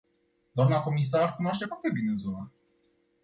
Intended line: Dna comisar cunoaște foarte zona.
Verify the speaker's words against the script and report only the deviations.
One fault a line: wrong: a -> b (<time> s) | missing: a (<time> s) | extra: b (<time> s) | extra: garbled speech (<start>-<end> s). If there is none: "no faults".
extra: bine (1.9 s)